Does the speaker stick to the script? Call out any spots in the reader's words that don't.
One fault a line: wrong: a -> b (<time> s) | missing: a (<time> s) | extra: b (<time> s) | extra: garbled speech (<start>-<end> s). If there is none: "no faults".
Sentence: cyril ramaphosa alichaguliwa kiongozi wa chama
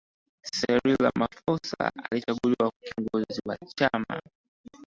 no faults